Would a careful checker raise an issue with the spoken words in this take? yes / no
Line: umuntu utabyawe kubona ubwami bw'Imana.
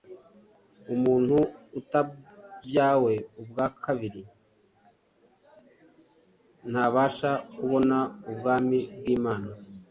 yes